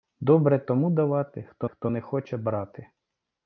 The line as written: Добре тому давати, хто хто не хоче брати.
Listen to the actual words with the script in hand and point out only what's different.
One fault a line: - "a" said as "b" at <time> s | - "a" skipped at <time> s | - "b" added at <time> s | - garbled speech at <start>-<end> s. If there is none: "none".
none